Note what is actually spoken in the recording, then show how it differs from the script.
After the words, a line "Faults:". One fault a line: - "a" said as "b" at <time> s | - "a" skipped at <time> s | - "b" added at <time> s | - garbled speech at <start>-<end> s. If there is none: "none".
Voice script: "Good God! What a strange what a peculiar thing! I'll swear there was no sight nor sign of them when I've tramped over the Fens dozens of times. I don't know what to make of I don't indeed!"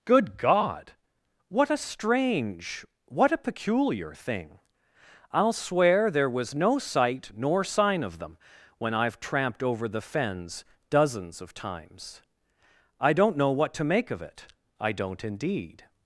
"Good God! What a strange what a peculiar thing! I'll swear there was no sight nor sign of them when I've tramped over the Fens dozens of times. I don't know what to make of it, I don't indeed!"
Faults:
- "it" added at 14.2 s